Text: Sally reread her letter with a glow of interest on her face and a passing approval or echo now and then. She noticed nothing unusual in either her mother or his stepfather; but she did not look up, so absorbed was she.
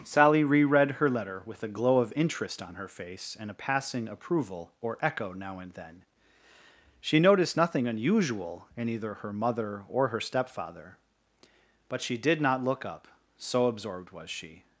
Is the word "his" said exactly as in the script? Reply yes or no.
no